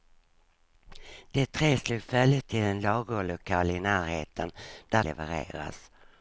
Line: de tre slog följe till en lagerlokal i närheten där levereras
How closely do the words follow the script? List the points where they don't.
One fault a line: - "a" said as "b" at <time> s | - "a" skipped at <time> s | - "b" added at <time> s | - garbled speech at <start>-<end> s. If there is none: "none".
none